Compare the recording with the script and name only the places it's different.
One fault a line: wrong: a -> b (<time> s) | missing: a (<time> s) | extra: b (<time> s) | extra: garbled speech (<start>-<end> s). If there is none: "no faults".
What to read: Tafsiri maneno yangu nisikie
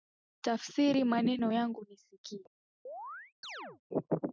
no faults